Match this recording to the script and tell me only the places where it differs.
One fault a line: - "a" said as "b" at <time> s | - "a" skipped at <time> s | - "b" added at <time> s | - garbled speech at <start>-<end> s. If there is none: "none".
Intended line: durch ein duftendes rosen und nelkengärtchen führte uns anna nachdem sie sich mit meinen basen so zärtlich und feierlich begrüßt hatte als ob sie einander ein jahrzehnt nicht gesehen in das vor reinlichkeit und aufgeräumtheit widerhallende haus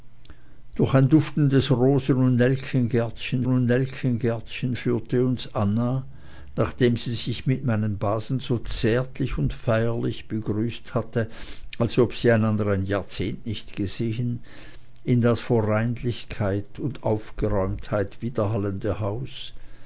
- "und nelkengärtchen" added at 3.4 s